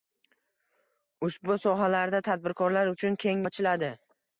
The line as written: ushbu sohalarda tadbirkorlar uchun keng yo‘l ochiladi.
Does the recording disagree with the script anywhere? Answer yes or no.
yes